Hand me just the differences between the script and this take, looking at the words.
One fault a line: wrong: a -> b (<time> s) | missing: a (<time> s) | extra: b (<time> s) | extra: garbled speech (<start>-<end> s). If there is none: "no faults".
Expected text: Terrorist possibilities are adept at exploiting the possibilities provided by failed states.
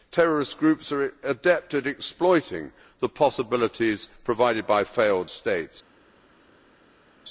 wrong: possibilities -> groups (0.6 s)